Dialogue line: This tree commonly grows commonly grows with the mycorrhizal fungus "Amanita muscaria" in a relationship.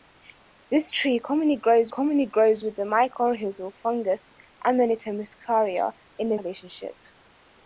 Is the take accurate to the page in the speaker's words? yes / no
yes